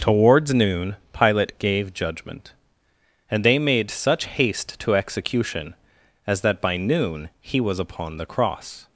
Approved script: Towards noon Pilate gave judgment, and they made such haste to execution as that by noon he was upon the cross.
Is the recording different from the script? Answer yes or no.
no